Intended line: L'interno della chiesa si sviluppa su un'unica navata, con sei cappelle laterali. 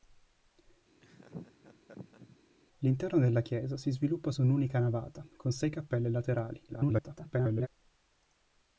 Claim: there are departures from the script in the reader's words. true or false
true